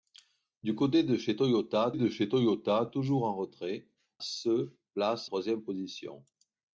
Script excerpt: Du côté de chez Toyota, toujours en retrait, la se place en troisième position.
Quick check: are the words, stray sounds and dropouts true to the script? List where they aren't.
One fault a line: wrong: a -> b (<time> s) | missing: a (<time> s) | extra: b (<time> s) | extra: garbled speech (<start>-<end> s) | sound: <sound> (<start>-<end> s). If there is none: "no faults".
extra: de chez Toyota (1.9 s)
missing: la (3.9 s)
missing: en (5.3 s)